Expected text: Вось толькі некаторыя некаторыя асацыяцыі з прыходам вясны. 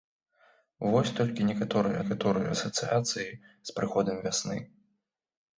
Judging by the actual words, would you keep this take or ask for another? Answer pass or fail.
pass